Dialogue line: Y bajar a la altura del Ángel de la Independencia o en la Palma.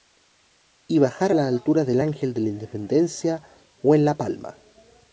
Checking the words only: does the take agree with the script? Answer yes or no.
yes